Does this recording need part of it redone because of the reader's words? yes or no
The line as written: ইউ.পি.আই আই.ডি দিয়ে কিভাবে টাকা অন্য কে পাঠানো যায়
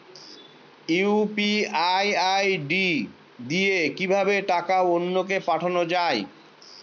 no